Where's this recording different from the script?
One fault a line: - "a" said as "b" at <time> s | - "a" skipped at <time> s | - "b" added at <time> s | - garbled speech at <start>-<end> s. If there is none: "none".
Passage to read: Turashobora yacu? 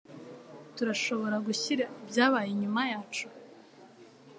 - "gushyira ibyabaye inyuma" added at 1.5 s